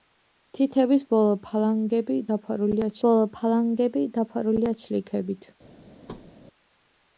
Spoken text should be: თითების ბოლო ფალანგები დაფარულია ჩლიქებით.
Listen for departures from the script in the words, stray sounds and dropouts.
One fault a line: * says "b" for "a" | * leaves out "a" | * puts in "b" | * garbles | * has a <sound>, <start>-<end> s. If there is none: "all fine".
* puts in "ბოლო ფალანგები დაფარულია"
* has a thud, 6.0-6.3 s